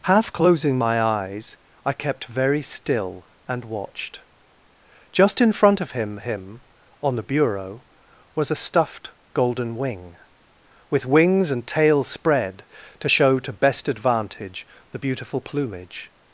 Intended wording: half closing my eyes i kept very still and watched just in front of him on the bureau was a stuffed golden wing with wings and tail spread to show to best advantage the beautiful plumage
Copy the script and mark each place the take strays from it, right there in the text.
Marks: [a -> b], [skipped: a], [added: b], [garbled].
half closing my eyes i kept very still and watched just in front of him [added: him] on the bureau was a stuffed golden wing with wings and tail spread to show to best advantage the beautiful plumage